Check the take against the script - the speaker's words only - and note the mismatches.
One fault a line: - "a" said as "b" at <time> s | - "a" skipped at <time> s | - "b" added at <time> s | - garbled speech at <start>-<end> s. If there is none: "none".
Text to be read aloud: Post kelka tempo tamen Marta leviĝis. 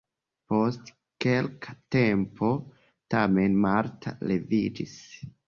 none